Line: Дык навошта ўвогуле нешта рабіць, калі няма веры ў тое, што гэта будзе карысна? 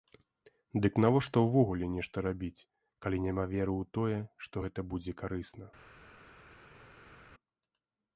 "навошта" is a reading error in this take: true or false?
false